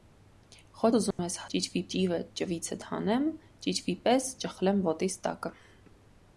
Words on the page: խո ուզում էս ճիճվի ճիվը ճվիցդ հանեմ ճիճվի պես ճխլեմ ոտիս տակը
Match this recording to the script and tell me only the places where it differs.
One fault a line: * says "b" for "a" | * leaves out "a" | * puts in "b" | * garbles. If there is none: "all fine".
all fine